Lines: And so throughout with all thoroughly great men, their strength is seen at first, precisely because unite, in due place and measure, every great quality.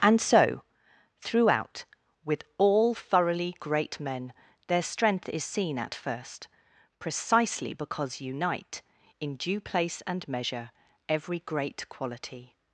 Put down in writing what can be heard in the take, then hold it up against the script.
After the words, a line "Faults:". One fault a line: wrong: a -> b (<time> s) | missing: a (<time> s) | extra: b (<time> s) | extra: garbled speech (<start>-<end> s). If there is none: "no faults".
And so throughout with all thoroughly great men, their strength is seen at first, precisely because unite, in due place and measure, every great quality.
Faults:
no faults